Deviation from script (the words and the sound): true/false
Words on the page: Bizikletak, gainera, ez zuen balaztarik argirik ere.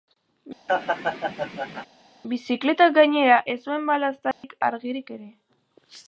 true